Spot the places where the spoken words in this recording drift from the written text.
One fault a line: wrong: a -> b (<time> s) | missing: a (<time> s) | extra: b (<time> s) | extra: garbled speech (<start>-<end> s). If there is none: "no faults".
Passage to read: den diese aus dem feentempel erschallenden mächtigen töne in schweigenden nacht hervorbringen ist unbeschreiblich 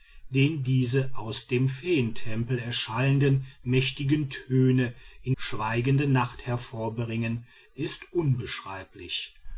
no faults